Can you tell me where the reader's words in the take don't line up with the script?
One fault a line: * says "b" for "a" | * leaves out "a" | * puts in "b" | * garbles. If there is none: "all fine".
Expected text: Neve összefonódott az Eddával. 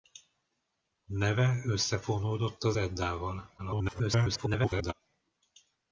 * garbles